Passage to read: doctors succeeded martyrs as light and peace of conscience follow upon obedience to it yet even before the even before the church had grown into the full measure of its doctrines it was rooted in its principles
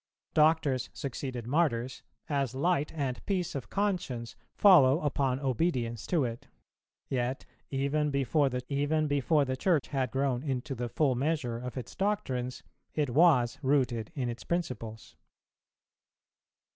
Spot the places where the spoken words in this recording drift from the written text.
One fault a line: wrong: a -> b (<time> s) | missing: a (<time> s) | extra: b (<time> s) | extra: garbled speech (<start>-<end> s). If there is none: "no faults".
no faults